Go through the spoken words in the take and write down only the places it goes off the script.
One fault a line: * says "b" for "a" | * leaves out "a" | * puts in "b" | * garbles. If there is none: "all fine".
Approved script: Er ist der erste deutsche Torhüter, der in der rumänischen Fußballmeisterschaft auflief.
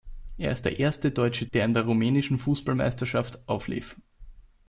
* leaves out "Torhüter"